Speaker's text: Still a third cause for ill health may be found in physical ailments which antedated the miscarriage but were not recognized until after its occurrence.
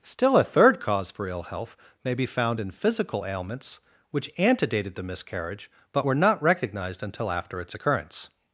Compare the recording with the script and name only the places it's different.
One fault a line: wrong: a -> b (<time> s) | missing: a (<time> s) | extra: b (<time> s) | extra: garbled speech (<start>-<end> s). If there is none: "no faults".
no faults